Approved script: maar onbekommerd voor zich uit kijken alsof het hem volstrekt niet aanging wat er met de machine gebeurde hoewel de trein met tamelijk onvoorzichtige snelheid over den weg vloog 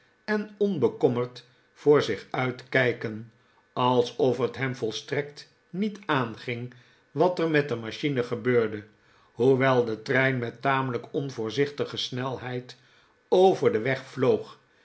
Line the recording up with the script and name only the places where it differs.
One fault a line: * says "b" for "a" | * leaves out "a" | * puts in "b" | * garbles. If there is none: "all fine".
* says "en" for "maar"